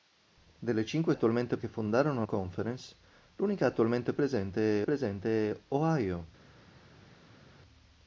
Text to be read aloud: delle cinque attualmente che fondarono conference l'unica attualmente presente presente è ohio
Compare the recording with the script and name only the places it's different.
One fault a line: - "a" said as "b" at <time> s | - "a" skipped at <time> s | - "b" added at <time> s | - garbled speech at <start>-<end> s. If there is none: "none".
none